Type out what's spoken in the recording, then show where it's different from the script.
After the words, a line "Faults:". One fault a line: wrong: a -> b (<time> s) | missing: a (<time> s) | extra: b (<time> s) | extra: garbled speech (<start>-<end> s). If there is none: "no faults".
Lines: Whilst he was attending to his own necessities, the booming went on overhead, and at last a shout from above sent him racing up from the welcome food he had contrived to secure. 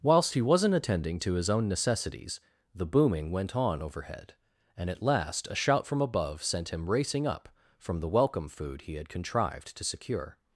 Whilst he wasn't attending to his own necessities, the booming went on overhead, and at last a shout from above sent him racing up from the welcome food he had contrived to secure.
Faults:
wrong: was -> wasn't (0.4 s)